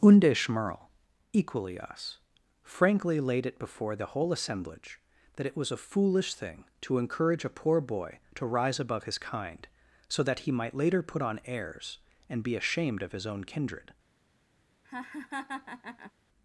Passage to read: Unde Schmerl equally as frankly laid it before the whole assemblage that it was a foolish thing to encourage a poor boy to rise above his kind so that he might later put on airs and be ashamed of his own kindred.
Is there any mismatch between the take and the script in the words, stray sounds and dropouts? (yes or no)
yes